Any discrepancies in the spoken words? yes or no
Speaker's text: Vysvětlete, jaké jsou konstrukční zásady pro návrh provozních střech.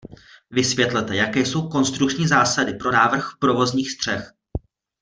no